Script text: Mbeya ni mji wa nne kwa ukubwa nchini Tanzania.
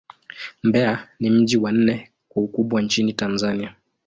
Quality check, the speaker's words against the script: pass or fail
pass